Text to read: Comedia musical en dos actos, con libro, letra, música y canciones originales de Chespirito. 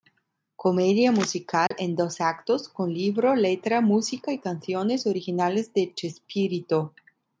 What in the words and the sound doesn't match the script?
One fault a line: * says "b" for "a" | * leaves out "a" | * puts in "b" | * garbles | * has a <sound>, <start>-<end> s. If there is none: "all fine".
* has a dropout, 1.7-1.7 s